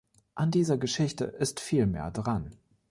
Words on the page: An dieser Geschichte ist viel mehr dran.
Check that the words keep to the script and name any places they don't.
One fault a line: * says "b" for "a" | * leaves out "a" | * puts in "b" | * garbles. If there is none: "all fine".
all fine